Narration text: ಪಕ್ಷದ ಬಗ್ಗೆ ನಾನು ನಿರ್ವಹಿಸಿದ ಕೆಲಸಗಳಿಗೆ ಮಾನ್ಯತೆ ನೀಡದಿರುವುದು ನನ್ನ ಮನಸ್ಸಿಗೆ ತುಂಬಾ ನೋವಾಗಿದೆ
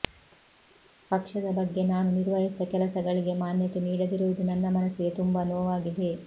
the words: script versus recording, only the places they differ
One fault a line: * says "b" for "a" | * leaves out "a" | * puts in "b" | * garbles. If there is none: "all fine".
all fine